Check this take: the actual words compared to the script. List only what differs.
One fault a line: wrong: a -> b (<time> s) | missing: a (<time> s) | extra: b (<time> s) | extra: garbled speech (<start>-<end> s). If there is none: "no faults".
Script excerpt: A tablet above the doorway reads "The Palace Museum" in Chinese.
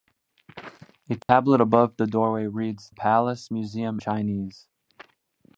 missing: The (2.9 s)
missing: in (4.0 s)